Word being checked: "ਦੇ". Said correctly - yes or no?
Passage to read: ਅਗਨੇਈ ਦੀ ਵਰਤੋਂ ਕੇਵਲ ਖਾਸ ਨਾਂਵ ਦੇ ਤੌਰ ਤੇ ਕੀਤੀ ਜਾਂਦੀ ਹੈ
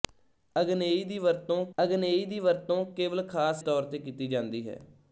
no